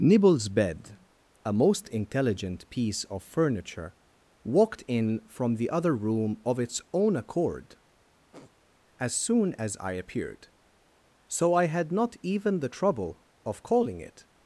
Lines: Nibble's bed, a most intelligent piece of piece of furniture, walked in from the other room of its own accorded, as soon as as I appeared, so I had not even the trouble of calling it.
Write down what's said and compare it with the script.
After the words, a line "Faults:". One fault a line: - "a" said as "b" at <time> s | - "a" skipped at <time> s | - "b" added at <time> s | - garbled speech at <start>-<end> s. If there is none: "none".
Nibble's bed, a most intelligent piece of furniture, walked in from the other room of its own accord, as soon as I appeared, so I had not even the trouble of calling it.
Faults:
- "piece of" skipped at 3.2 s
- "accorded" said as "accord" at 7.2 s
- "as" skipped at 9.8 s